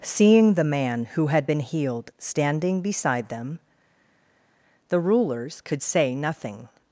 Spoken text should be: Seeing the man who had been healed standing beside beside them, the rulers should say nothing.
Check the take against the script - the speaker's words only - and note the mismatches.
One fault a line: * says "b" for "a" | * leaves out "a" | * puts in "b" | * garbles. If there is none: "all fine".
* leaves out "beside"
* says "could" for "should"